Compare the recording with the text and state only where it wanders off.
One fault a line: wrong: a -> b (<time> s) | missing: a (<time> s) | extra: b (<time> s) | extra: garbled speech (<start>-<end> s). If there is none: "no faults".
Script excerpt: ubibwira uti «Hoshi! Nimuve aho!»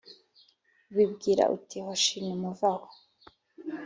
no faults